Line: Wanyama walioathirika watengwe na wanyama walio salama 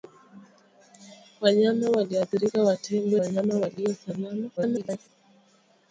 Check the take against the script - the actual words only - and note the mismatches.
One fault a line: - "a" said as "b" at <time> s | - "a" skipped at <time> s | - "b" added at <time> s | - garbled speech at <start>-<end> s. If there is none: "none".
- "na" skipped at 3.2 s
- garbled speech at 4.6-5.1 s